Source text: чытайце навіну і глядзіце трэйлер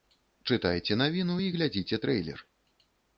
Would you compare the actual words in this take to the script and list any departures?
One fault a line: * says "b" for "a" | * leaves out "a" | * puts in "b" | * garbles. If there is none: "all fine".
all fine